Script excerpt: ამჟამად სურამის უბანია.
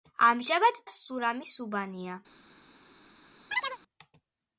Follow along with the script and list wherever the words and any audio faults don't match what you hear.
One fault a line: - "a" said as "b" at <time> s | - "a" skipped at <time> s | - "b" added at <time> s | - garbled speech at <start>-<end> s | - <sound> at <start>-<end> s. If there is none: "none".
- chirp at 3.5-3.8 s